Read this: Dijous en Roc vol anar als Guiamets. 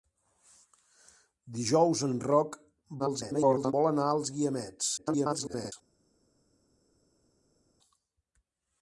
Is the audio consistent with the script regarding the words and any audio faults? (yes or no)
no